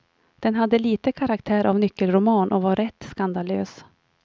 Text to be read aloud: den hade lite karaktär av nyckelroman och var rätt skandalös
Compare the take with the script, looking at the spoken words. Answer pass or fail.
pass